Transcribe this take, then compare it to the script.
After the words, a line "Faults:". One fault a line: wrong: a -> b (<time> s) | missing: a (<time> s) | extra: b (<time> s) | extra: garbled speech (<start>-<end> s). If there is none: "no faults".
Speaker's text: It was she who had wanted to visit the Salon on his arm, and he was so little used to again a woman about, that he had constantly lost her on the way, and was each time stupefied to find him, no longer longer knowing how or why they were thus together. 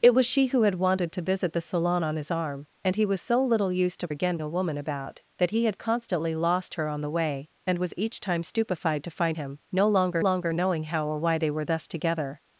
It was she who had wanted to visit the Salon on his arm, and he was so little used to again a woman about, that he had constantly lost her on the way, and was each time stupefied to find him, no longer longer knowing how or why they were thus together.
Faults:
no faults